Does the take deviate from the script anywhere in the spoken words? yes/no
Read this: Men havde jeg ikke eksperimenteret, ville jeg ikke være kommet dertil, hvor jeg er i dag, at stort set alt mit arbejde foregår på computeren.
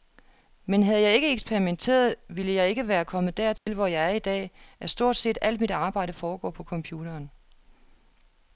no